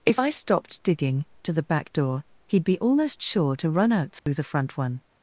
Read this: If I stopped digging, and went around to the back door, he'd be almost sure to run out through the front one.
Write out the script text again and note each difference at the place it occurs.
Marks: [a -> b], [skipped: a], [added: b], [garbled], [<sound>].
If I stopped digging, [skipped: and went around] to the back door, he'd be almost sure to run out through [dropout] the front one.